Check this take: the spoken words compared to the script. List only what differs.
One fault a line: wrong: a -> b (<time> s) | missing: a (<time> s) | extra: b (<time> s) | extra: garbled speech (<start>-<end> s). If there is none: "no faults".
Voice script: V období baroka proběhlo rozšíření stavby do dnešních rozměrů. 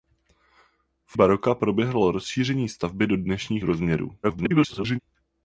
missing: období (1.2 s)
extra: garbled speech (4.2-5.0 s)